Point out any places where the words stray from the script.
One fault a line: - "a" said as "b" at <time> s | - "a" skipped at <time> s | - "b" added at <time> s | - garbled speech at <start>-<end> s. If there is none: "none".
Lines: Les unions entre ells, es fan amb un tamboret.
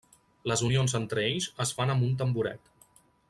none